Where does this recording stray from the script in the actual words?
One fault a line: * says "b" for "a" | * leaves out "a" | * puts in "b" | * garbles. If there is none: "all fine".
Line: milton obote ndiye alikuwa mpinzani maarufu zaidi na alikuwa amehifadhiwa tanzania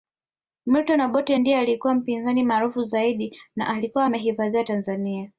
all fine